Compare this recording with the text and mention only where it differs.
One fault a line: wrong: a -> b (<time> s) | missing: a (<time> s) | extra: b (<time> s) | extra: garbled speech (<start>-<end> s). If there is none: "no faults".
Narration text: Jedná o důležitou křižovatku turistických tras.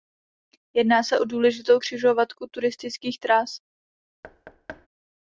extra: se (1.0 s)